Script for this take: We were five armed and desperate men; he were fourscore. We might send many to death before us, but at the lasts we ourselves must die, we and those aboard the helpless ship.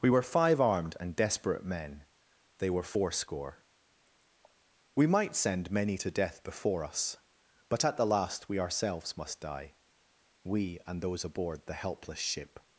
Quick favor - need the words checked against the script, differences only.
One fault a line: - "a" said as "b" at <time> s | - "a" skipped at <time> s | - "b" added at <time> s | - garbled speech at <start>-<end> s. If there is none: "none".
- "he" said as "they" at 2.6 s
- "lasts" said as "last" at 8.1 s